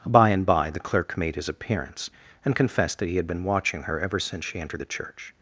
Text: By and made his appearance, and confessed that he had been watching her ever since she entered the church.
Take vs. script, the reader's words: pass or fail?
fail